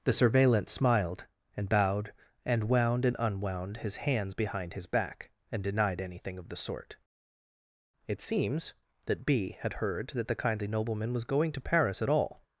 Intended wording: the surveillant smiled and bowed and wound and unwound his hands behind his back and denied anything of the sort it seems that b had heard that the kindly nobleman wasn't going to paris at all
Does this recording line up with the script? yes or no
no